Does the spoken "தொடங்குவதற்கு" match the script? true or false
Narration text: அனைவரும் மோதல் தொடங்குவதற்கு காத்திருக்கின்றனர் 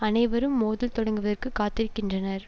true